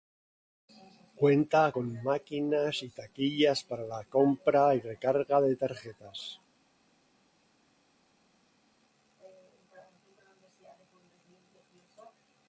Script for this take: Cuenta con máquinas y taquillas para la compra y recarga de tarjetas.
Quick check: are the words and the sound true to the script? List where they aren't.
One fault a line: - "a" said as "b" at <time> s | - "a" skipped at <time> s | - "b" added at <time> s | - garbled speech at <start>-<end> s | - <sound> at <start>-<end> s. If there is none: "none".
none